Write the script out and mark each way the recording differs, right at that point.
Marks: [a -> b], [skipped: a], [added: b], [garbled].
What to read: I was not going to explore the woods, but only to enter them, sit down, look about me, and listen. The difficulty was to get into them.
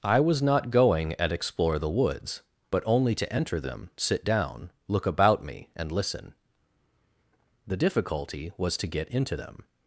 I was not going [to -> at] explore the woods, but only to enter them, sit down, look about me, and listen. The difficulty was to get into them.